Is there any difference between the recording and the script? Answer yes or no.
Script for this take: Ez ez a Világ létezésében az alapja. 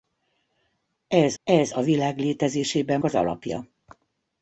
no